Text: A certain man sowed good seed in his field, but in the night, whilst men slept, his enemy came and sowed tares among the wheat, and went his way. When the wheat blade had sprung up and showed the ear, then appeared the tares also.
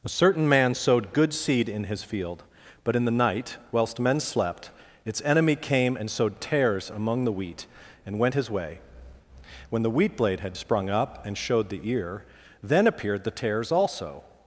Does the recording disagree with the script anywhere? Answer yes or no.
yes